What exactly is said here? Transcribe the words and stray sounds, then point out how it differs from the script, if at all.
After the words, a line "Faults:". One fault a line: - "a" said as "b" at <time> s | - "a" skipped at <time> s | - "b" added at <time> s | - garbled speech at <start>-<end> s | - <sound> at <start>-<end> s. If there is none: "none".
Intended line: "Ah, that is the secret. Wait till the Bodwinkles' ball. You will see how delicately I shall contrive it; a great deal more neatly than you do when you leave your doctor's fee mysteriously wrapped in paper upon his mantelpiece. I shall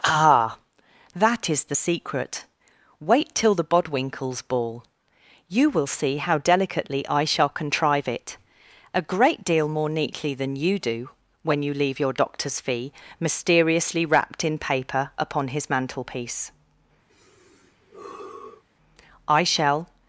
"Ah, that is the secret. Wait till the Bodwinkles' ball. You will see how delicately I shall contrive it; a great deal more neatly than you do when you leave your doctor's fee mysteriously wrapped in paper upon his mantelpiece. I shall
Faults:
- sigh at 17.1-18.6 s